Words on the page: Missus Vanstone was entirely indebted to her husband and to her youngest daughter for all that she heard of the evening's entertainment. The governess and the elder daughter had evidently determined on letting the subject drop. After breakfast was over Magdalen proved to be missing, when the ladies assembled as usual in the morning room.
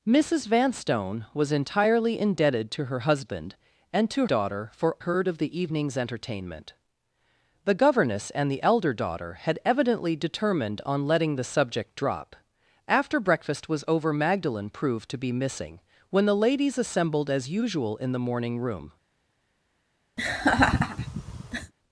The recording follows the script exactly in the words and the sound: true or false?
false